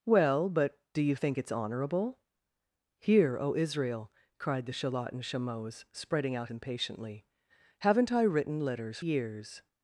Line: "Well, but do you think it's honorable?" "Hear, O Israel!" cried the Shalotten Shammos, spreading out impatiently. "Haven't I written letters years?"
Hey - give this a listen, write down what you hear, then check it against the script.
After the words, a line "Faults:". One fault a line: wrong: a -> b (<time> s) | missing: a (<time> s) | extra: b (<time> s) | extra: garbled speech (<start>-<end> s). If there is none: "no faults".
"Well, but do you think it's honorable?" "Hear, O Israel!" cried the Shalotten Shammos, spreading out impatiently. "Haven't I written letters years?"
Faults:
no faults